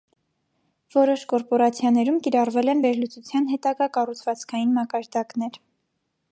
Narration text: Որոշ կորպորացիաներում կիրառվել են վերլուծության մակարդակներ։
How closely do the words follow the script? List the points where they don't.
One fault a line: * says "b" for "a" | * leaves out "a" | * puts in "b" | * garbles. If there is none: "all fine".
* puts in "հետագա կառուցվածքային"